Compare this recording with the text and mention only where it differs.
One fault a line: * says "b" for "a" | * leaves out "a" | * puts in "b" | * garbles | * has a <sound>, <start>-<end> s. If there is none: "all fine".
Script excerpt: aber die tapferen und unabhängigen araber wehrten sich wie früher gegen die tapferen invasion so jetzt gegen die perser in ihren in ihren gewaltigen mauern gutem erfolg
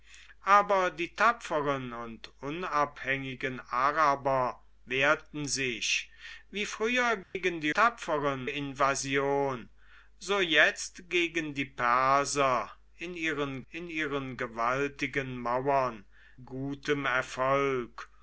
* has a dropout, 7.2-7.4 s